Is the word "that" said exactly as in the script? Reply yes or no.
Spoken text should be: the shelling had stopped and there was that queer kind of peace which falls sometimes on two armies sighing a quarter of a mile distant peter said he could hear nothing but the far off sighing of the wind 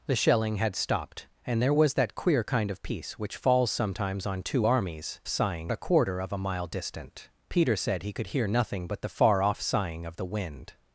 yes